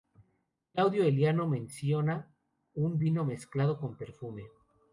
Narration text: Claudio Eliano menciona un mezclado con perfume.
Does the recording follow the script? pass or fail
fail